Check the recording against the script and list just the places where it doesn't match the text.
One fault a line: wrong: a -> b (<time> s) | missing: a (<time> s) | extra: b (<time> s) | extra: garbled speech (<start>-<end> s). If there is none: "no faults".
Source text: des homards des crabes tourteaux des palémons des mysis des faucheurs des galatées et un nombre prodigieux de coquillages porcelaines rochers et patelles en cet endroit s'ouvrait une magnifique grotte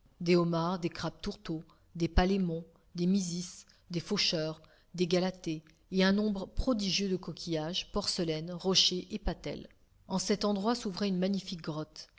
no faults